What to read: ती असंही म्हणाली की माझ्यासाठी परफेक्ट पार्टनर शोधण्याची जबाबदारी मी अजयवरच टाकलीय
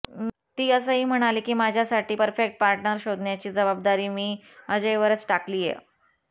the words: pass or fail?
pass